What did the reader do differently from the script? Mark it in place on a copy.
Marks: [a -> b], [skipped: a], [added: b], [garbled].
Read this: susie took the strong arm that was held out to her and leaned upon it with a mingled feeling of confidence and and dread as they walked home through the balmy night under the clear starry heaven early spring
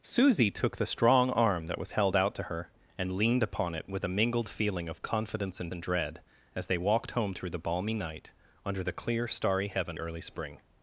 susie took the strong arm that was held out to her and leaned upon it with a mingled feeling of confidence and and dread as they walked home through the balmy night under the clear starry heaven early spring